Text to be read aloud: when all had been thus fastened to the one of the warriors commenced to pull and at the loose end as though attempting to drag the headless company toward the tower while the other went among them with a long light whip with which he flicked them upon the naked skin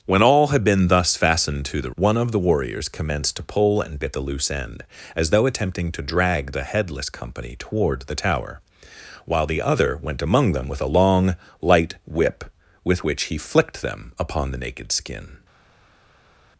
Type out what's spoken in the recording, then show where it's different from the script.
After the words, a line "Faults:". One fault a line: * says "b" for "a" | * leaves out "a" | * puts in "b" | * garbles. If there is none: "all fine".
when all had been thus fastened to the one of the warriors commenced to pull and at the loose end as though attempting to drag the headless company toward the tower while the other went among them with a long light whip with which he flicked them upon the naked skin
Faults:
all fine